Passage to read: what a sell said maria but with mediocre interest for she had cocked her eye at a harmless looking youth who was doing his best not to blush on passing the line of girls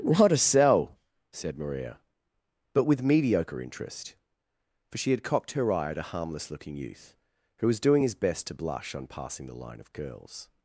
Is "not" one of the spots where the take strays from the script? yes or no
yes